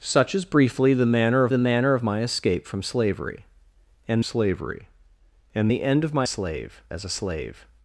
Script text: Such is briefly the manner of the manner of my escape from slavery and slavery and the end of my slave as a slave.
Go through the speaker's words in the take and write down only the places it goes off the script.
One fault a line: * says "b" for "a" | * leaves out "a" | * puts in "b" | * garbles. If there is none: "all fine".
all fine